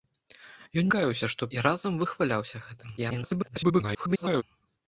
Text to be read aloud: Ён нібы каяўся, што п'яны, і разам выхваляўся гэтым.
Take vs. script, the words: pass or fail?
fail